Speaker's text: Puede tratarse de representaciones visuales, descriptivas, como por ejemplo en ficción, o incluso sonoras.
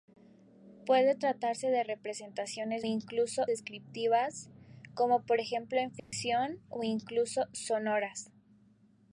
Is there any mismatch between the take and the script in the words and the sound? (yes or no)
yes